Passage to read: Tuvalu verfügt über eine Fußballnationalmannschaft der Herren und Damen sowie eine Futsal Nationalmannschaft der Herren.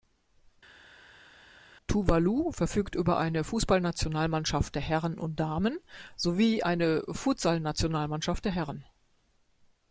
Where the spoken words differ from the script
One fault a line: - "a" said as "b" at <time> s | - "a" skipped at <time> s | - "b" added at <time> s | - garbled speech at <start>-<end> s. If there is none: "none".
none